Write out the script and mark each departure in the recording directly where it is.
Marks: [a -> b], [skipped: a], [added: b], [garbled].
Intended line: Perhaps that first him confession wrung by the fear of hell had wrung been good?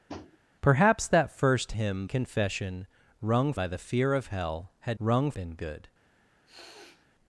Perhaps that first him confession wrung by the fear of hell had wrung been good?